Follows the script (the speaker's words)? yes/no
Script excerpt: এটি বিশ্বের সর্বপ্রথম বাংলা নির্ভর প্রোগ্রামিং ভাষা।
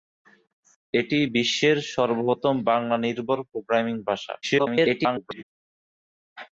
no